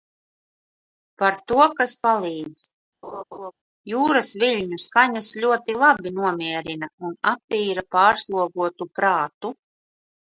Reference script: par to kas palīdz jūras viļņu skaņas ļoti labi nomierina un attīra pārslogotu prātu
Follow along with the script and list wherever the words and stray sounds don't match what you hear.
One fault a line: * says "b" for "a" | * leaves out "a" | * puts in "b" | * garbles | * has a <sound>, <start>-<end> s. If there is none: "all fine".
* has a laugh, 3.0-3.5 s